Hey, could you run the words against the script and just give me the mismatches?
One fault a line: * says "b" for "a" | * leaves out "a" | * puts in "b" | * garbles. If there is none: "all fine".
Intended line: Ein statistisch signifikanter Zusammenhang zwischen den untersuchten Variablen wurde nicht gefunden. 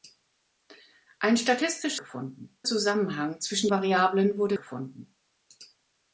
* says "gefunden" for "signifikanter"
* leaves out "den untersuchten"
* leaves out "nicht"